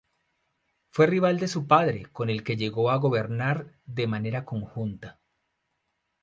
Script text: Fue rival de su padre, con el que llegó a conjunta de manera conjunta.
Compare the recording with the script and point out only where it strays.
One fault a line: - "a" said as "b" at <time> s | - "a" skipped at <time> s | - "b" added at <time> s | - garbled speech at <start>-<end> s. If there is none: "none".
- "conjunta" said as "gobernar" at 3.0 s